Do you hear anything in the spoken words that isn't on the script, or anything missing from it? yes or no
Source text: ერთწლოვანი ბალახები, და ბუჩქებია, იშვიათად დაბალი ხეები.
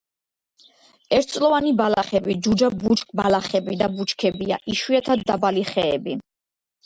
yes